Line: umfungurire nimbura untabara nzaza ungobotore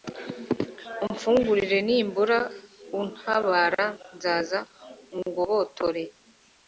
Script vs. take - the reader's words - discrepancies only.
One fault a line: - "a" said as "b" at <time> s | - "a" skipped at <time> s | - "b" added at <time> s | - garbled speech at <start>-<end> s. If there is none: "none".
none